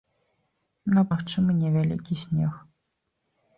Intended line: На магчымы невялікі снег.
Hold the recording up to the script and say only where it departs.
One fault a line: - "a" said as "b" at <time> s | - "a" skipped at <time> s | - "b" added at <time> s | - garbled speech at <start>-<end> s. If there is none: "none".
none